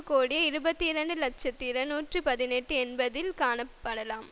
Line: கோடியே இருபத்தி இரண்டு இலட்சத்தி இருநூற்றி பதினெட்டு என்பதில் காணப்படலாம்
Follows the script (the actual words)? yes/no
yes